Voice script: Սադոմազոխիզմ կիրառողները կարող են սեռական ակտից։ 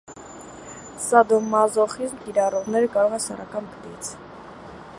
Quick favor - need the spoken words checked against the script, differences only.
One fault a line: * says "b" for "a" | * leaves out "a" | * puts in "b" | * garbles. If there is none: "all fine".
all fine